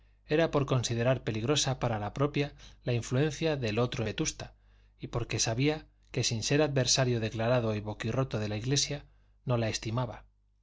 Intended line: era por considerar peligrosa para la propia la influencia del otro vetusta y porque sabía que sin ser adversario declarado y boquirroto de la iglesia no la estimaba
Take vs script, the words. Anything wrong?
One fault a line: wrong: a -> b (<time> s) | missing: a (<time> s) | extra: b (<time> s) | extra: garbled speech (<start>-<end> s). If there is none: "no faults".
no faults